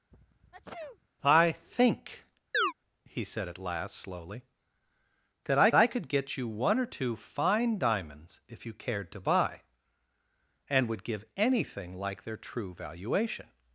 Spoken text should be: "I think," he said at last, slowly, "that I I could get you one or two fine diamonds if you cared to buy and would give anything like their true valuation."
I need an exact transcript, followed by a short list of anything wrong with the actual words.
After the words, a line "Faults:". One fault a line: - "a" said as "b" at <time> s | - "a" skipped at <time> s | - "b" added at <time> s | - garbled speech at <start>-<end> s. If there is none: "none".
"I think," he said at last, slowly, "that I I could get you one or two fine diamonds if you cared to buy and would give anything like their true valuation."
Faults:
none